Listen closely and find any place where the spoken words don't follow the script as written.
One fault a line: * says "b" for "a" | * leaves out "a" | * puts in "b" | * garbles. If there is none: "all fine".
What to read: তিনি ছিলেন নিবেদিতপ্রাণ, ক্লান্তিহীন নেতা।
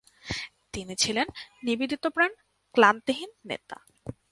all fine